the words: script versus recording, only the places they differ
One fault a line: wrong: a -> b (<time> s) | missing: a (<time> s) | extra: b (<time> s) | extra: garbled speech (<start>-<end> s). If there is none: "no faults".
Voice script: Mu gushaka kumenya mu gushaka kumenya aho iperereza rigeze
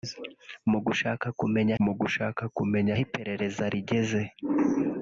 no faults